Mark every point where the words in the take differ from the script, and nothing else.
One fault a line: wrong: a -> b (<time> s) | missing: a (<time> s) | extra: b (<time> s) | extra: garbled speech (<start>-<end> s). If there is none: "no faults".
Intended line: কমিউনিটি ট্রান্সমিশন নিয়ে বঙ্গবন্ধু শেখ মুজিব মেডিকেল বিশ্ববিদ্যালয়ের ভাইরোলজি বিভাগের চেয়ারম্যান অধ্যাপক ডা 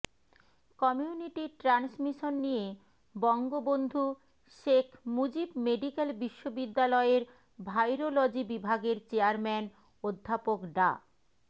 no faults